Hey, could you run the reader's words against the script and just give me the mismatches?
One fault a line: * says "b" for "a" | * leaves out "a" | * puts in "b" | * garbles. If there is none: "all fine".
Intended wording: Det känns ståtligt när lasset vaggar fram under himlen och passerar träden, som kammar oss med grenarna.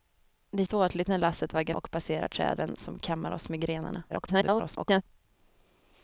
* leaves out "känns"
* leaves out "fram under himlen"
* garbles